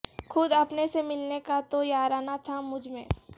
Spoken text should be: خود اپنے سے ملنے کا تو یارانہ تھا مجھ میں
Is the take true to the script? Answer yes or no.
yes